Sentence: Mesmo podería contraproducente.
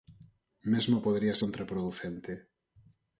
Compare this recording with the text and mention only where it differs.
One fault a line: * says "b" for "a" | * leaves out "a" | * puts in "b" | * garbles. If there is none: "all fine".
all fine